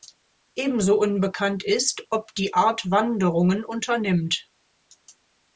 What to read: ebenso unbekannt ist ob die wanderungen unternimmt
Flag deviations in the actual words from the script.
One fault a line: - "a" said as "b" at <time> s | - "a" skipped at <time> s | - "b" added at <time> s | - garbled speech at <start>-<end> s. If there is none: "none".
- "art" added at 2.5 s